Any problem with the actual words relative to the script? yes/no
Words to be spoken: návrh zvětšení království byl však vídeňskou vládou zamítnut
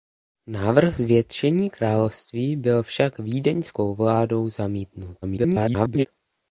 yes